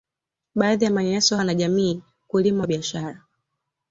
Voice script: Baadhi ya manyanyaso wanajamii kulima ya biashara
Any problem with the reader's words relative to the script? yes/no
no